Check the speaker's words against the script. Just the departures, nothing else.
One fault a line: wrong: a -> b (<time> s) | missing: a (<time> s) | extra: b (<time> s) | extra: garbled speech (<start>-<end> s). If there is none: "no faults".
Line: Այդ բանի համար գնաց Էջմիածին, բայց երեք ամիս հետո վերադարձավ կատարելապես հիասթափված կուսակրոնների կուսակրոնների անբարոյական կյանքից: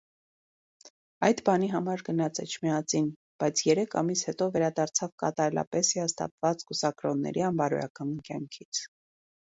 missing: կուսակրոնների (7.5 s)